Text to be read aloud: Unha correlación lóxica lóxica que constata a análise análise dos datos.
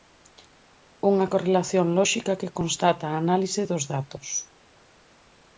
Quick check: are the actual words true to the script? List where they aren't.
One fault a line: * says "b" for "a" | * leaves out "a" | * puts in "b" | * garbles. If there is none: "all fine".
* leaves out "lóxica"
* leaves out "análise"